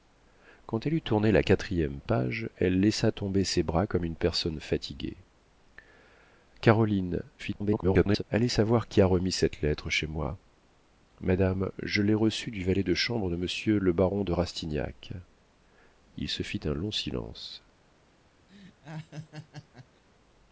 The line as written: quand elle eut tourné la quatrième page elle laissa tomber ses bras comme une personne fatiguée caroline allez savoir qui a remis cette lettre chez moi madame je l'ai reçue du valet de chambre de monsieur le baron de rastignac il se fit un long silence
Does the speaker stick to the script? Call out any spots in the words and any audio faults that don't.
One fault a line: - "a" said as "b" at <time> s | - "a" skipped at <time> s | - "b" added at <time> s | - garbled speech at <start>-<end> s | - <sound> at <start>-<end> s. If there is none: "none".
- garbled speech at 7.4-8.2 s
- laugh at 18.5-20.0 s